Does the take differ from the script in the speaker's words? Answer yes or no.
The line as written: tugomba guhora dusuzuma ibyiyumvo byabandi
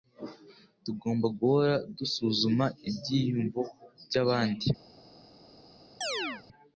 no